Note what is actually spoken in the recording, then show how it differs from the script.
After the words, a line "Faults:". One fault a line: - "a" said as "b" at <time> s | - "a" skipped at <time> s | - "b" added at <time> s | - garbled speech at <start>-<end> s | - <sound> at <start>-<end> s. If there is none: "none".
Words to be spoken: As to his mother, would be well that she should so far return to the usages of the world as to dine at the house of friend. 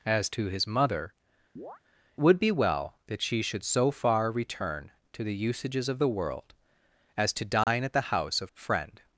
As to his mother, would be well that she should so far return to the usages of the world as to dine at the house of friend.
Faults:
- chirp at 1.6-1.8 s
- dropout at 7.6-7.7 s